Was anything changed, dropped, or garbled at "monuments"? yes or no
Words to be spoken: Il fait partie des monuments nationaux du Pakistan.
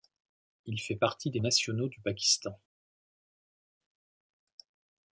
yes